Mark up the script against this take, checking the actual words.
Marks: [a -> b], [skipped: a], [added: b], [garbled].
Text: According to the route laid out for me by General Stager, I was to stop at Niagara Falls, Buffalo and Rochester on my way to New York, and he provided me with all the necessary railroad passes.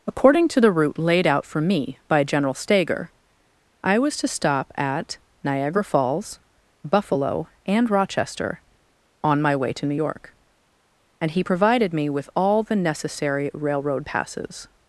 According to the route laid out for me by General Stager, I was to stop at Niagara Falls, Buffalo and Rochester on my way to New York, and he provided me with all the necessary railroad passes.